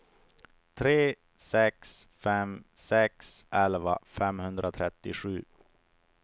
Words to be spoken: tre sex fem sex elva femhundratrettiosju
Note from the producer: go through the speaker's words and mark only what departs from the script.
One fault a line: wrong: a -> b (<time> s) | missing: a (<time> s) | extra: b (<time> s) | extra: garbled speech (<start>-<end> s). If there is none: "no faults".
no faults